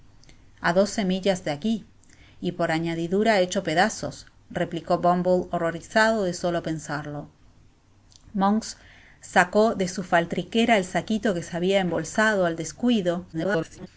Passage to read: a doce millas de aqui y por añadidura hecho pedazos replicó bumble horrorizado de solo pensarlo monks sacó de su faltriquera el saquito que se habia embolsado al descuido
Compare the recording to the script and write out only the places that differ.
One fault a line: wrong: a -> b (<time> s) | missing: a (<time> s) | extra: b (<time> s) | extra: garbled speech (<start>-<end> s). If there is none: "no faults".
extra: garbled speech (13.3-13.9 s)